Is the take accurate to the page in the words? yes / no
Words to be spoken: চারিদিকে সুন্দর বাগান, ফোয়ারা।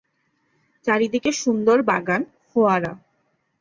yes